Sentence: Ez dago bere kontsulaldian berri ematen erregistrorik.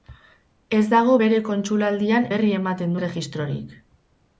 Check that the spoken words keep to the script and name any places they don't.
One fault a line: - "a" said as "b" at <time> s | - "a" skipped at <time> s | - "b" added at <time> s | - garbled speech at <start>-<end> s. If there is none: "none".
none